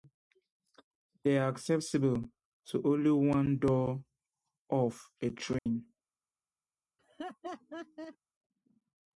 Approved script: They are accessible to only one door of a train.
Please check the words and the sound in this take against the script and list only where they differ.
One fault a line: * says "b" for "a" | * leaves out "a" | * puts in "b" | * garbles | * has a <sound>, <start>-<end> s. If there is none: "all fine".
* has a dropout, 5.6-5.7 s
* has a laugh, 7.0-8.2 s